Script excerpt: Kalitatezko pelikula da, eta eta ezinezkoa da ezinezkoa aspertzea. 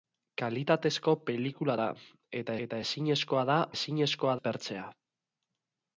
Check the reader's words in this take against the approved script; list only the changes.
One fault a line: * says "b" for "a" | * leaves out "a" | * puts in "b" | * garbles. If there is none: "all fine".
all fine